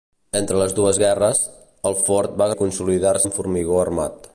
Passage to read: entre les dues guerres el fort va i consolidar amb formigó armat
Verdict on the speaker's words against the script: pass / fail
pass